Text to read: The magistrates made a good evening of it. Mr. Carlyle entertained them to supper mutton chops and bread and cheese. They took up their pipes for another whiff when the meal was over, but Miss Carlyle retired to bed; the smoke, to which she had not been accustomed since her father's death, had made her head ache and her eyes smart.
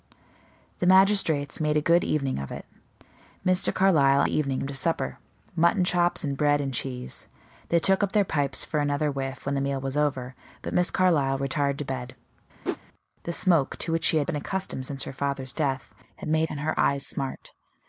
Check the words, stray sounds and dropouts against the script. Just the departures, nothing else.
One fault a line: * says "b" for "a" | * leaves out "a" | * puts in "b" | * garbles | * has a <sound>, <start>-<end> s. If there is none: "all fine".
* says "evening" for "entertained"
* has a whoosh, 12.6-12.8 s
* leaves out "not"
* leaves out "her head ache"